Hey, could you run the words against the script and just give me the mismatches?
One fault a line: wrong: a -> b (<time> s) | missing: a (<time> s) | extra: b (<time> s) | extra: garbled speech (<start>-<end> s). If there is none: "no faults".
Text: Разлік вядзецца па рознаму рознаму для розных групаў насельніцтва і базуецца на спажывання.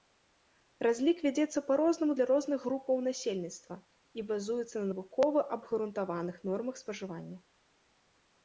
missing: рознаму (2.1 s)
extra: навукова абгрунтаваных нормах (4.9 s)